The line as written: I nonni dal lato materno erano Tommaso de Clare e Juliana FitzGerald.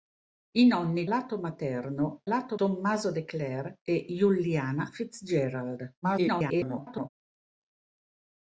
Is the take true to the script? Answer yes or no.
no